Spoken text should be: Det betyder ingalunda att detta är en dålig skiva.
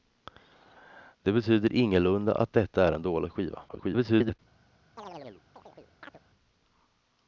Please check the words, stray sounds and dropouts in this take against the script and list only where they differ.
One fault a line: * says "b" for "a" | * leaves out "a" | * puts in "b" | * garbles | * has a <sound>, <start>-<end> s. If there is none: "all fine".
* garbles
* has a chirp, 5.0-6.2 s